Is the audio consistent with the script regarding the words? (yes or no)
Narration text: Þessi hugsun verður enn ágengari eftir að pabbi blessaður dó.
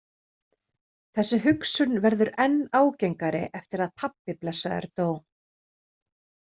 yes